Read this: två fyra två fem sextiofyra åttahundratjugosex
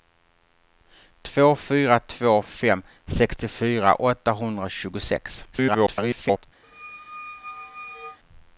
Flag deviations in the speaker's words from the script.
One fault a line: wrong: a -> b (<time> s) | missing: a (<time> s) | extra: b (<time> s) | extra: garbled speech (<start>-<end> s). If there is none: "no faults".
extra: garbled speech (5.5-6.4 s)